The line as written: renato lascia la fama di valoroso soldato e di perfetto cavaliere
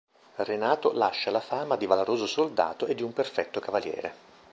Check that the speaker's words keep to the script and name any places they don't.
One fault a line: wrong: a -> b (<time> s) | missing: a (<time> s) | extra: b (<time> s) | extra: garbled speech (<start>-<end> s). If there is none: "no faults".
extra: un (3.0 s)